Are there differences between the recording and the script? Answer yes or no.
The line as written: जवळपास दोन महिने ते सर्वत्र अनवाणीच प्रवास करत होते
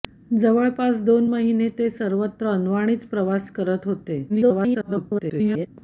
yes